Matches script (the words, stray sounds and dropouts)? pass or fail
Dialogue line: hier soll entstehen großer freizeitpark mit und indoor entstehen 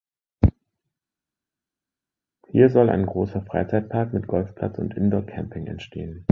fail